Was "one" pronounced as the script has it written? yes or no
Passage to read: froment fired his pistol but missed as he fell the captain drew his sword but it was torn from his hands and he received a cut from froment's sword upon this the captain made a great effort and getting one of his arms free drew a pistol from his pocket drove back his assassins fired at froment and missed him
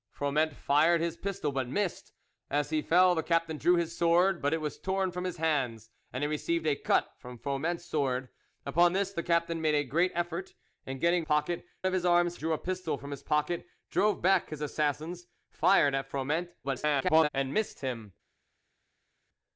no